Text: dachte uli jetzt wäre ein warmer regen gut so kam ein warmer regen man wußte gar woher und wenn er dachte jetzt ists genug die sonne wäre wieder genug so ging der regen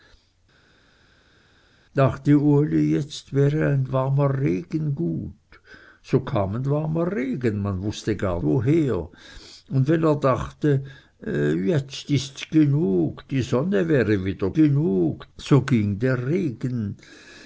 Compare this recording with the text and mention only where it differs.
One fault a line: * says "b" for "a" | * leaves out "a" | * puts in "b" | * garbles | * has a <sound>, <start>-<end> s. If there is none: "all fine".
all fine